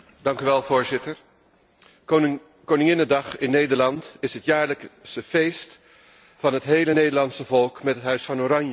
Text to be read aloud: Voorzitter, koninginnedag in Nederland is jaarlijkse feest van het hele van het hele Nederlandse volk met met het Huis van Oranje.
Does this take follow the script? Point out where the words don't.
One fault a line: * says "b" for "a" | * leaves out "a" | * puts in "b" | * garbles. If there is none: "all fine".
* puts in "het"
* leaves out "van het hele"
* leaves out "met"